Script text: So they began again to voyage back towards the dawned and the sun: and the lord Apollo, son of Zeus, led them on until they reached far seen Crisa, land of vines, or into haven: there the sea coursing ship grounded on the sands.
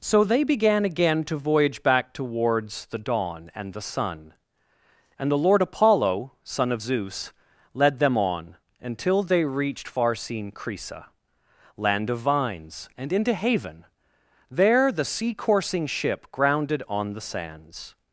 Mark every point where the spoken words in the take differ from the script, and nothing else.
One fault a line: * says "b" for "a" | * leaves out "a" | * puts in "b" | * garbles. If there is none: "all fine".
* says "dawn" for "dawned"
* says "and" for "or"